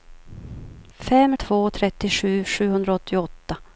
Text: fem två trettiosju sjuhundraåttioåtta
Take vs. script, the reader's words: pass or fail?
pass